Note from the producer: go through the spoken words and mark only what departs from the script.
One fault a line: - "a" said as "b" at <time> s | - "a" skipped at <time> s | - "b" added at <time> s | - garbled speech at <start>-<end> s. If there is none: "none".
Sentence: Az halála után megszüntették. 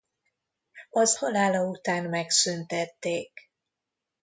none